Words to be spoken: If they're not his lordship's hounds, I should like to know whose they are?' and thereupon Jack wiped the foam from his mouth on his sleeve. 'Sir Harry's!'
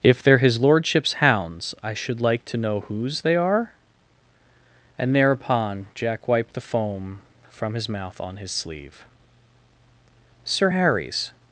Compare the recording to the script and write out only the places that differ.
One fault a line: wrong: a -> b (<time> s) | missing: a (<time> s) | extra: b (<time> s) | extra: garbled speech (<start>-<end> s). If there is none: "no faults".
missing: not (0.4 s)